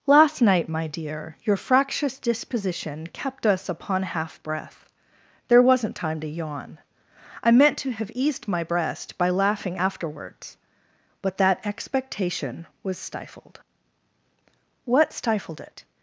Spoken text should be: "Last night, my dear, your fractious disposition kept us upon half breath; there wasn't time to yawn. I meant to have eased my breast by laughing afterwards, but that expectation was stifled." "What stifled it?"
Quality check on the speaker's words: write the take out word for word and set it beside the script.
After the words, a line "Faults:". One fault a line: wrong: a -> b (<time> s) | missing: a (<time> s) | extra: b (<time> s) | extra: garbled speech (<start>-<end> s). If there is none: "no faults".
"Last night, my dear, your fractious disposition kept us upon half breath; there wasn't time to yawn. I meant to have eased my breast by laughing afterwards, but that expectation was stifled." "What stifled it?"
Faults:
no faults